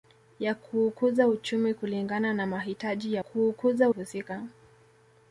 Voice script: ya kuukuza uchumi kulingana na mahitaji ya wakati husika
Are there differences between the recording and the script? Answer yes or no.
yes